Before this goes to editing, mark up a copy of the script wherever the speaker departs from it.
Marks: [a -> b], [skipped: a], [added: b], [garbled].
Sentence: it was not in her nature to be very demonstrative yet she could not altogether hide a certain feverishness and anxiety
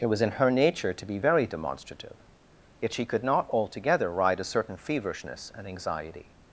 it was [skipped: not] in her nature to be very demonstrative yet she could not altogether [hide -> ride] a certain feverishness and anxiety